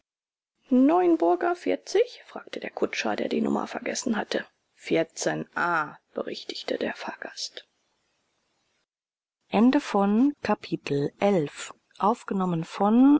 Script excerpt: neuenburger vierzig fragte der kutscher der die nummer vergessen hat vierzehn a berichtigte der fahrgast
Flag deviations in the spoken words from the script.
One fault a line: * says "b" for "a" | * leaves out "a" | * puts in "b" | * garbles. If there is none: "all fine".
* says "hatte" for "hat"